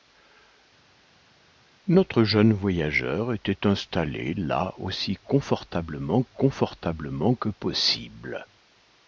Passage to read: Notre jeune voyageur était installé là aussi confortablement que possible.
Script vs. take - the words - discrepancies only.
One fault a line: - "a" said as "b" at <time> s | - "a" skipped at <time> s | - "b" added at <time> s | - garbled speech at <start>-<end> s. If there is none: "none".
- "confortablement" added at 6.3 s